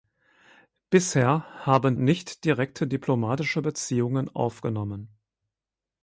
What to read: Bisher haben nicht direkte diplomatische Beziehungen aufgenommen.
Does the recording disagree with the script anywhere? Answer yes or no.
no